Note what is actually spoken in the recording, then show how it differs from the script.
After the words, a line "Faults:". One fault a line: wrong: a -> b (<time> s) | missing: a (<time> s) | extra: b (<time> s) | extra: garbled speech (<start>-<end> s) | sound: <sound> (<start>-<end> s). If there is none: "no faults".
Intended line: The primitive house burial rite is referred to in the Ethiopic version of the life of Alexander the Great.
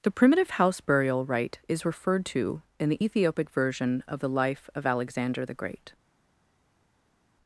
The primitive house burial rite is referred to in the Ethiopic version of the life of Alexander the Great.
Faults:
no faults